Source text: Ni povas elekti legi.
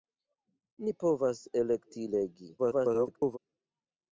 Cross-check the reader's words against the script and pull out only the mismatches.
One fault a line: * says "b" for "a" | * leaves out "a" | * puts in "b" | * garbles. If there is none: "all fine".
* garbles